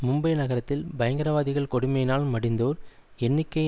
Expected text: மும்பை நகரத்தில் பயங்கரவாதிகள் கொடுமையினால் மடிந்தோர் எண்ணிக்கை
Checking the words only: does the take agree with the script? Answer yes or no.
yes